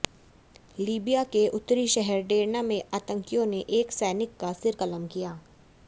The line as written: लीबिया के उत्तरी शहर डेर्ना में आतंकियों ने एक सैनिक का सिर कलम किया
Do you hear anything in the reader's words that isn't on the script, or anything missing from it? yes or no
no